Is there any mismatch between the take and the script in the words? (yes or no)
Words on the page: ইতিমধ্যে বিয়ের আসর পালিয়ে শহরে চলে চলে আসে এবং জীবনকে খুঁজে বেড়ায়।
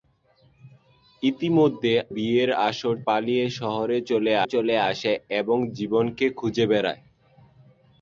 no